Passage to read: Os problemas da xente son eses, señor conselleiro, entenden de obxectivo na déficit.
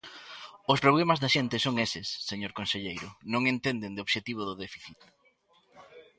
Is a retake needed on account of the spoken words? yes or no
yes